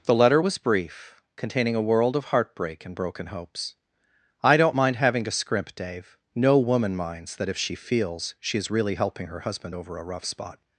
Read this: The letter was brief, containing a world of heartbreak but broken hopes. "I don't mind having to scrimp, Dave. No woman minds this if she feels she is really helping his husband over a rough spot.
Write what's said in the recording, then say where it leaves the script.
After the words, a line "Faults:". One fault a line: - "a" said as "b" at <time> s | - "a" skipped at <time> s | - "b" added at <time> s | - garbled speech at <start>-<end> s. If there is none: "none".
The letter was brief, containing a world of heartbreak and broken hopes. "I don't mind having to scrimp, Dave. No woman minds that if she feels she is really helping her husband over a rough spot.
Faults:
- "but" said as "and" at 2.9 s
- "this" said as "that" at 7.4 s
- "his" said as "her" at 9.3 s